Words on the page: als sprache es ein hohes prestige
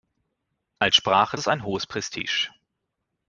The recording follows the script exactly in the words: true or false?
true